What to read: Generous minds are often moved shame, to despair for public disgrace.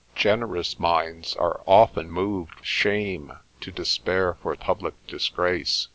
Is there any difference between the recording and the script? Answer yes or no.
no